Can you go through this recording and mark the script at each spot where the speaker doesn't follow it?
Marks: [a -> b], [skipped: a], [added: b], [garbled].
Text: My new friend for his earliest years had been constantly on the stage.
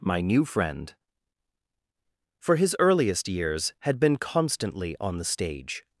My new friend for his earliest years had been constantly on the stage.